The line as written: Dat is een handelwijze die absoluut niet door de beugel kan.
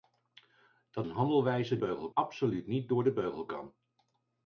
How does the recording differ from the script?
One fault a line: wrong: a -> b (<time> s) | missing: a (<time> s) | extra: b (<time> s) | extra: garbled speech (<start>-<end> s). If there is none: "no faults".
missing: is (1.1 s)
wrong: die -> beugel (1.8 s)